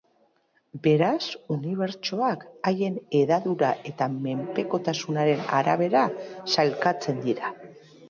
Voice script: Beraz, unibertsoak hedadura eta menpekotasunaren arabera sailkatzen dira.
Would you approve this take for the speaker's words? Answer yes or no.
no